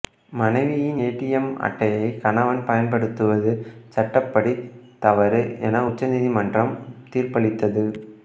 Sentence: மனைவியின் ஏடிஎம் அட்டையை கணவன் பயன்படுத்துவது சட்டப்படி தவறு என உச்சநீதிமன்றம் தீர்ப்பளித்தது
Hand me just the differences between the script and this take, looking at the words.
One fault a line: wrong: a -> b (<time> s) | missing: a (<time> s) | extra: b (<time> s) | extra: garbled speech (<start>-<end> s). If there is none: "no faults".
no faults